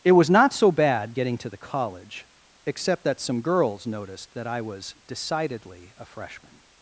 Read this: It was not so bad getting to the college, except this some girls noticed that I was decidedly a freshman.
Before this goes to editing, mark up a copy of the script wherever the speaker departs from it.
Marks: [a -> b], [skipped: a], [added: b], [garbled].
It was not so bad getting to the college, except [this -> that] some girls noticed that I was decidedly a freshman.